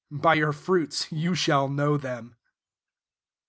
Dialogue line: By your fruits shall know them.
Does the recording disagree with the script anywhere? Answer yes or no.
yes